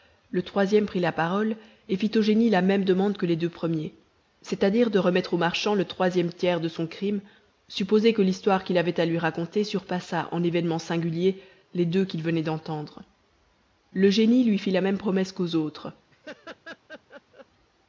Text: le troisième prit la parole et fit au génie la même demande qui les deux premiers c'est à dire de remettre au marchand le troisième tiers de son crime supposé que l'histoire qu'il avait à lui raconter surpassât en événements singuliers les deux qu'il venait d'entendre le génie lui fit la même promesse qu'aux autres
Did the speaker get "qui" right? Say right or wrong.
wrong